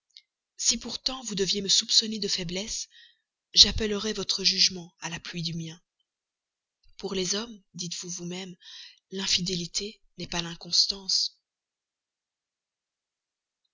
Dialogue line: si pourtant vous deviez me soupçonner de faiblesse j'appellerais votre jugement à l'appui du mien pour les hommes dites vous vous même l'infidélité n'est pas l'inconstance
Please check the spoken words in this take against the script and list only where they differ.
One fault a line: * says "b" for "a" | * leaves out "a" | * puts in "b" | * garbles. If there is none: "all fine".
all fine